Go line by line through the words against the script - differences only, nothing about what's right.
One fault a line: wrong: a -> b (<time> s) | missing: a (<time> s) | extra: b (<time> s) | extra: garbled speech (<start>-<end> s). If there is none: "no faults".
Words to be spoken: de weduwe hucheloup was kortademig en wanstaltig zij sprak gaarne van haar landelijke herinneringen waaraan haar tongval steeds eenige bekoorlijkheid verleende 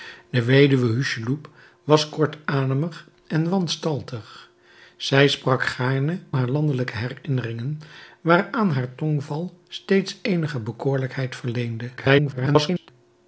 missing: van (6.2 s)
extra: garbled speech (12.0-12.9 s)